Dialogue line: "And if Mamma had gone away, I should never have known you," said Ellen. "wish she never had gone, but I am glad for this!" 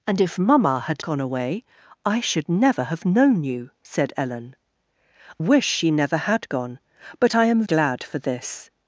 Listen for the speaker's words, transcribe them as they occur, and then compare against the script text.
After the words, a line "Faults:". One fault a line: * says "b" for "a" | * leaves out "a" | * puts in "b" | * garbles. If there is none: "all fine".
"And if Mamma had gone away, I should never have known you," said Ellen. "wish she never had gone, but I am glad for this!"
Faults:
all fine